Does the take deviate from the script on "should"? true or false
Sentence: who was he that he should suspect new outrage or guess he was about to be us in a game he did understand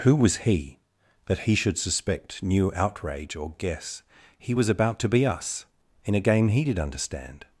false